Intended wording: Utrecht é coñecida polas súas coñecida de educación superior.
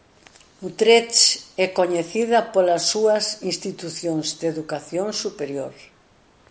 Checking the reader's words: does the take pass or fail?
fail